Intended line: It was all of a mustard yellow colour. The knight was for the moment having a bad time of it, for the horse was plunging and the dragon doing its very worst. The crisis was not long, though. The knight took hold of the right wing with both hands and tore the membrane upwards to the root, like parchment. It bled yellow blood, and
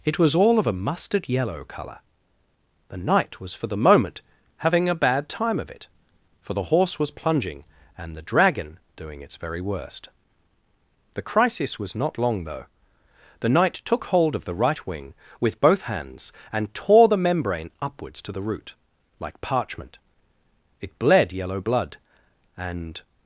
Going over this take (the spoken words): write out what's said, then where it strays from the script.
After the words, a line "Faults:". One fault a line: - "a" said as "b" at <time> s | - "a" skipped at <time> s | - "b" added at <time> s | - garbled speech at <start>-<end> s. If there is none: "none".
It was all of a mustard yellow colour. The knight was for the moment having a bad time of it, for the horse was plunging and the dragon doing its very worst. The crisis was not long, though. The knight took hold of the right wing with both hands and tore the membrane upwards to the root, like parchment. It bled yellow blood, and
Faults:
none